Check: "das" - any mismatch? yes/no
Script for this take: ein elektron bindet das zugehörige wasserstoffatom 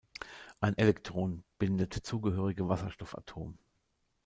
yes